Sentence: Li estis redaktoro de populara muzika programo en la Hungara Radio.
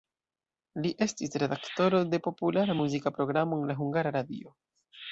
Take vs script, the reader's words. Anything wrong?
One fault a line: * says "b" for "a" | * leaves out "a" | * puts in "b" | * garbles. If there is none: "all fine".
all fine